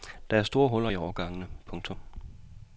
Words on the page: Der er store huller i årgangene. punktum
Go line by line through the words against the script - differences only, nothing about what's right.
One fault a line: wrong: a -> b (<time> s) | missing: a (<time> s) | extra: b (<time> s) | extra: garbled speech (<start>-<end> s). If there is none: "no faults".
no faults